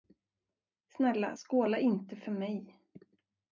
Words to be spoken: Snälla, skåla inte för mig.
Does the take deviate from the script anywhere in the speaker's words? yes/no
no